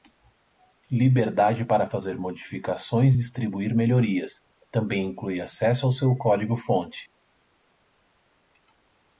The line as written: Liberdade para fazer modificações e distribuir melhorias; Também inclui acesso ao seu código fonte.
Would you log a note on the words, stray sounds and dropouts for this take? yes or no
no